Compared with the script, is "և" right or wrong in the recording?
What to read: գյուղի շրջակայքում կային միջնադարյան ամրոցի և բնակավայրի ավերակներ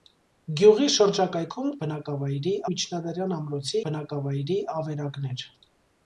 wrong